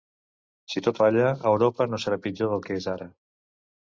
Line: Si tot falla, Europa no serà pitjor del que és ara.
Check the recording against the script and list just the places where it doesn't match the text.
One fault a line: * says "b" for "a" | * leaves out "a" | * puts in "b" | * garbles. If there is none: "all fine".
all fine